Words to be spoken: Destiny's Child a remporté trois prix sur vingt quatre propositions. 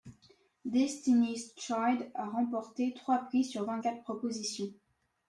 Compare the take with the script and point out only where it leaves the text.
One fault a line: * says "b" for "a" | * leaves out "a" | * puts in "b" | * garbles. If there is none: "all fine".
all fine